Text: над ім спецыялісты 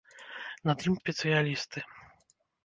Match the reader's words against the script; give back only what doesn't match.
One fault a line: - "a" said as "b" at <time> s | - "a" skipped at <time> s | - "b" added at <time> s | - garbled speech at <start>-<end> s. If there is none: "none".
none